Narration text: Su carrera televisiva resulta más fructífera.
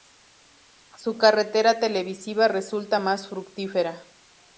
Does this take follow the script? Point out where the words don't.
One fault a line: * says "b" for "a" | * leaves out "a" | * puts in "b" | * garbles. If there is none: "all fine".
all fine